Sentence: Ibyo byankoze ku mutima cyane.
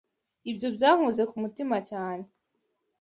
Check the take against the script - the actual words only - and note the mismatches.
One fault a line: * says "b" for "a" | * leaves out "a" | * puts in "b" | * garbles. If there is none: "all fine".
all fine